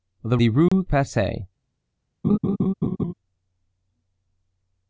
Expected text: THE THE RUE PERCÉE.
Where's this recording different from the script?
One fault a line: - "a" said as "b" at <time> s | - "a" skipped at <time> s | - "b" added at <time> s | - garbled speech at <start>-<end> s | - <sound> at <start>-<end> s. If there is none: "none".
- dropout at 0.7-0.7 s
- laugh at 2.2-3.1 s